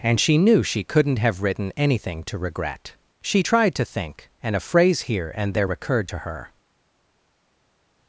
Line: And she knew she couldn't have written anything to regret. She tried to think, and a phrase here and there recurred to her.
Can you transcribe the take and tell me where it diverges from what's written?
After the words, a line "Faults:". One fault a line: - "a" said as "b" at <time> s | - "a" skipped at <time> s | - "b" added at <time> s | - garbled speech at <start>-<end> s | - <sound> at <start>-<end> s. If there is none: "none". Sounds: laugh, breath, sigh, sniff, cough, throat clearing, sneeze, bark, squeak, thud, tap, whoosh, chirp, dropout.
And she knew she couldn't have written anything to regret. She tried to think, and a phrase here and there recurred to her.
Faults:
none